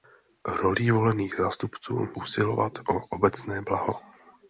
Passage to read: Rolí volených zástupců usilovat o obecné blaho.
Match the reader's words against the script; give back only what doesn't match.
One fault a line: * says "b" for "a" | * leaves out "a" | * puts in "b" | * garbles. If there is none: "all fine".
all fine